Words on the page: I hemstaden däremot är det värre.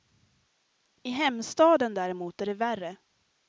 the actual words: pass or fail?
pass